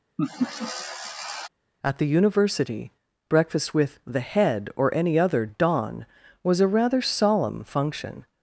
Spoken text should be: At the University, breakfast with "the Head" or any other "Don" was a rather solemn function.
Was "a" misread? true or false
false